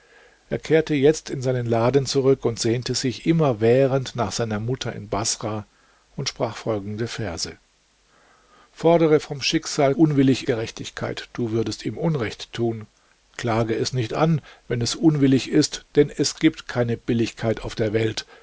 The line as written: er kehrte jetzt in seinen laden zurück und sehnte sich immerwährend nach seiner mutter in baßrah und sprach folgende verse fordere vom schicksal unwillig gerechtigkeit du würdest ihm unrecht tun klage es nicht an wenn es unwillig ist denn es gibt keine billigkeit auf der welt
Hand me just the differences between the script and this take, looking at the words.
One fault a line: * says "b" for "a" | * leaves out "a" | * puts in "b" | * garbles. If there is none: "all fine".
all fine